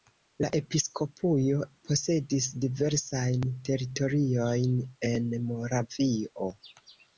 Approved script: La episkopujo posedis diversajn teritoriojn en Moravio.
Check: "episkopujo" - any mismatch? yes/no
no